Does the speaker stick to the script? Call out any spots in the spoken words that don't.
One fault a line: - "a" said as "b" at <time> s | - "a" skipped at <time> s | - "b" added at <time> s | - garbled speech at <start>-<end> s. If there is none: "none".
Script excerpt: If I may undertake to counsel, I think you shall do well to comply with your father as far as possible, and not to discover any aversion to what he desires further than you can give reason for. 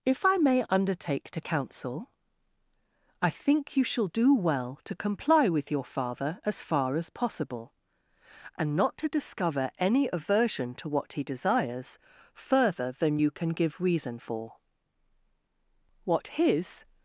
- "What his" added at 16.0 s